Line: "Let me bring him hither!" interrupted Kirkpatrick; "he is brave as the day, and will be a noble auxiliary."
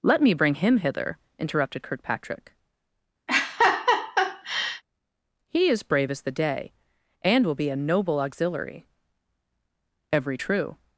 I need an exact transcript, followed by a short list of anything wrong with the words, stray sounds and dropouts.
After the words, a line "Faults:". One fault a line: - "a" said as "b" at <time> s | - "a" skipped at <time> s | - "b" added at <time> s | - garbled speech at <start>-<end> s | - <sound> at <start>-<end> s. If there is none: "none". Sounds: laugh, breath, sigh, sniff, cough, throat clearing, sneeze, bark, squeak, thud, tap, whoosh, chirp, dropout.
"Let me bring him hither!" interrupted Kirkpatrick; "he is brave as the day, and will be a noble auxiliary." "Every true
Faults:
- laugh at 3.3-4.8 s
- "Every true" added at 10.1 s